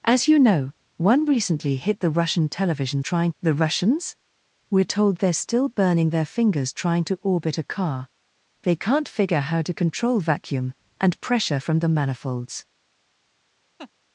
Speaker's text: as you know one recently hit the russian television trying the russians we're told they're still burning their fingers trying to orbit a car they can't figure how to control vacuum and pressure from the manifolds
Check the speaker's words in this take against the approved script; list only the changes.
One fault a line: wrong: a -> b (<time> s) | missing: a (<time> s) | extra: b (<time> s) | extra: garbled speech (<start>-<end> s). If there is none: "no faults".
no faults